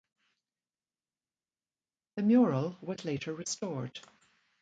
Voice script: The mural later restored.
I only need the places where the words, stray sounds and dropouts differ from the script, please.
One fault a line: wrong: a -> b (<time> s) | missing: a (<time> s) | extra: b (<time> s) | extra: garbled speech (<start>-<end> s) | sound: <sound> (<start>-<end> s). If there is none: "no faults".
extra: was (2.8 s)